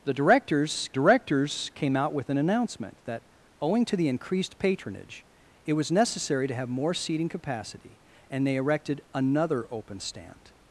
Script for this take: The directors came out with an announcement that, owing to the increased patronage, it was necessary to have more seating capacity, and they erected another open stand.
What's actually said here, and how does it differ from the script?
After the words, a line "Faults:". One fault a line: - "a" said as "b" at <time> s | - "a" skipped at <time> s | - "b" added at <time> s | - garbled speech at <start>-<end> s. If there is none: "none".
The directors directors came out with an announcement that, owing to the increased patronage, it was necessary to have more seating capacity, and they erected another open stand.
Faults:
- "directors" added at 0.9 s